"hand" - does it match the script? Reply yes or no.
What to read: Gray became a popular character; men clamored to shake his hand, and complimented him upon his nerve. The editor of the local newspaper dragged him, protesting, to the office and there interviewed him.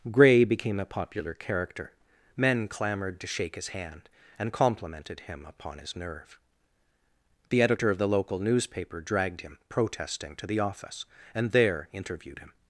yes